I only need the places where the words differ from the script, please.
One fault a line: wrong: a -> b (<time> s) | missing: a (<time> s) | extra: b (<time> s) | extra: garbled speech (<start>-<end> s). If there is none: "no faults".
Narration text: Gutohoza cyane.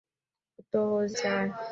no faults